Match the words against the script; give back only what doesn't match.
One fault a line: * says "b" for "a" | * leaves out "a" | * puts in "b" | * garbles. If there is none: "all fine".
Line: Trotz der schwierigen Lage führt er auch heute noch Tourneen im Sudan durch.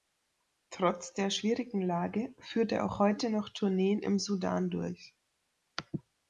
all fine